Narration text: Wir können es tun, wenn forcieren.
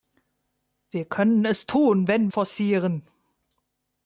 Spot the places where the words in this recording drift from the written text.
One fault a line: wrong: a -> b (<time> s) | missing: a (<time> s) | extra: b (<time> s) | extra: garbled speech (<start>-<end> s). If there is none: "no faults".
no faults